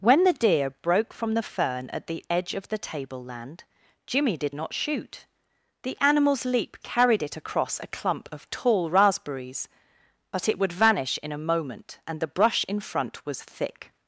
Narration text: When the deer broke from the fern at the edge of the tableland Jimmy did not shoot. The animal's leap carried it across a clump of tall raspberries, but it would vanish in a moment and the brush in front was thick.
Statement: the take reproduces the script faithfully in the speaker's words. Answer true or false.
true